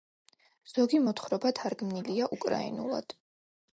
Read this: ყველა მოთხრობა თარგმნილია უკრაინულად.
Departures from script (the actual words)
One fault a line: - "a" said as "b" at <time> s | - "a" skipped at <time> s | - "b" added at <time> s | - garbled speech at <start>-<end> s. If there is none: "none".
- "ყველა" said as "ზოგი" at 0.7 s